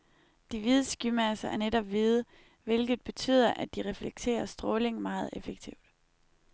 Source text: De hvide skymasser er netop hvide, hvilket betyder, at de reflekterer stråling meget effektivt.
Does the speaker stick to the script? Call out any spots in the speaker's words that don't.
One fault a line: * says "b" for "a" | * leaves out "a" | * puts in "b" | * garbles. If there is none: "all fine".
all fine